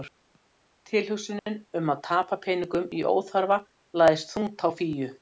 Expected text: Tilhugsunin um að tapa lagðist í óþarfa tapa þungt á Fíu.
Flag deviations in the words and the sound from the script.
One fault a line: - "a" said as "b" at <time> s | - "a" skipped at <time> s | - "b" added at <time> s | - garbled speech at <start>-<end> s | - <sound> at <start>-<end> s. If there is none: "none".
- dropout at 1.4-1.5 s
- "lagðist" said as "peningum" at 2.5 s
- "tapa" said as "lagðist" at 4.0 s